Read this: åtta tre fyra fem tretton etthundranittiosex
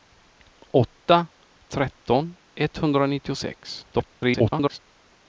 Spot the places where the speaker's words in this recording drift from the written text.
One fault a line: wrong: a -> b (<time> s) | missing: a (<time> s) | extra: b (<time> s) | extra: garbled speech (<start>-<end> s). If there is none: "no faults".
missing: tre fyra fem (1.3 s)
extra: garbled speech (3.9-4.8 s)